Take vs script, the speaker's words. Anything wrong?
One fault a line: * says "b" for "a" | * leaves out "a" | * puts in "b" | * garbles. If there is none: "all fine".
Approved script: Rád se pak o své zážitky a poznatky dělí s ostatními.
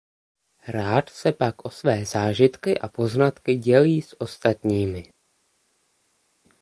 all fine